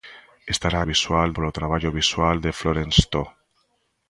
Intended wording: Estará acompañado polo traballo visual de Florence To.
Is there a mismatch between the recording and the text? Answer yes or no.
yes